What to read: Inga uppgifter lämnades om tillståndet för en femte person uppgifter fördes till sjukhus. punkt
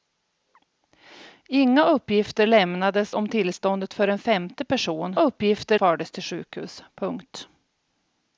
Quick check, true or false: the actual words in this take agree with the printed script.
true